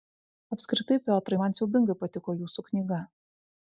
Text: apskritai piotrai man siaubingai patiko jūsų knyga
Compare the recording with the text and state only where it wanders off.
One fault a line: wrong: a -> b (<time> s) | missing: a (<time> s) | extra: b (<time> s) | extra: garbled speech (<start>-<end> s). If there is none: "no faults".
no faults